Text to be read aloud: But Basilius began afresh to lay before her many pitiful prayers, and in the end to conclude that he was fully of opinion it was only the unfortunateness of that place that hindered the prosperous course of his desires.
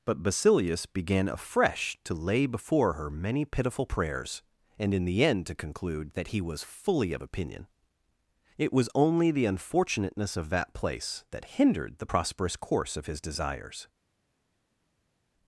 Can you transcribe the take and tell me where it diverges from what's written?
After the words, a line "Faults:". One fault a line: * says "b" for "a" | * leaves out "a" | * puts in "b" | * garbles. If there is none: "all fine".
But Basilius began afresh to lay before her many pitiful prayers, and in the end to conclude that he was fully of opinion it was only the unfortunateness of that place that hindered the prosperous course of his desires.
Faults:
all fine